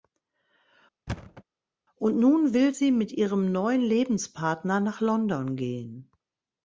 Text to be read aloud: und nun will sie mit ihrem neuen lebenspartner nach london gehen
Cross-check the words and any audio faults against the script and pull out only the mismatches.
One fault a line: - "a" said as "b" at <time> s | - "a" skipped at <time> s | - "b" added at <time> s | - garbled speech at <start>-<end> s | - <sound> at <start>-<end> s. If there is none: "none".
- thud at 1.1-1.4 s